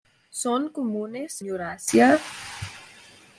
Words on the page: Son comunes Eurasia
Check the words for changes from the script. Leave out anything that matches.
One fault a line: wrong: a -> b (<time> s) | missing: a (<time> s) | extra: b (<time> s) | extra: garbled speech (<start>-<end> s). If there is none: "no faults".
no faults